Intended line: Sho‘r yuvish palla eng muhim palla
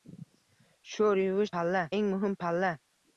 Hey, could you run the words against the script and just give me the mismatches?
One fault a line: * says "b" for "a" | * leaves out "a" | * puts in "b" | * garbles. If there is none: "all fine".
all fine